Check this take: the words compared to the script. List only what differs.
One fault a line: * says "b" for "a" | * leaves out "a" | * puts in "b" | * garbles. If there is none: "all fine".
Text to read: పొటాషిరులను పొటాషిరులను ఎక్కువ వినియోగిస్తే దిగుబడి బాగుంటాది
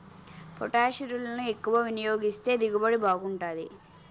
* leaves out "పొటాషిరులను"